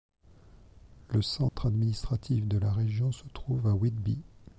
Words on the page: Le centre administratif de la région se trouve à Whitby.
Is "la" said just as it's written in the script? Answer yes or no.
yes